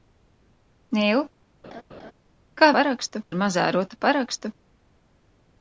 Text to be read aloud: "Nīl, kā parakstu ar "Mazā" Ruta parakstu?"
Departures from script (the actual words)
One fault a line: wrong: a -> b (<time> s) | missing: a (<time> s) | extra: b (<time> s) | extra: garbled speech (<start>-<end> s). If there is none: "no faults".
no faults